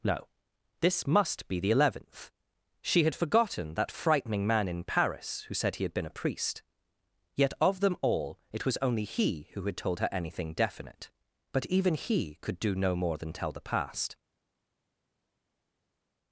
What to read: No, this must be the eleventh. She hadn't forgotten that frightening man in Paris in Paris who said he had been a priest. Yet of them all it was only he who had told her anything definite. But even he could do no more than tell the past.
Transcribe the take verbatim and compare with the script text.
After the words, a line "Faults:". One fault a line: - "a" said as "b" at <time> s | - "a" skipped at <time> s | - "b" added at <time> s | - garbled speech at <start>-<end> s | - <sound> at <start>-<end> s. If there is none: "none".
No, this must be the eleventh. She had forgotten that frightening man in Paris who said he had been a priest. Yet of them all it was only he who had told her anything definite. But even he could do no more than tell the past.
Faults:
- "hadn't" said as "had" at 3.0 s
- "in Paris" skipped at 5.5 s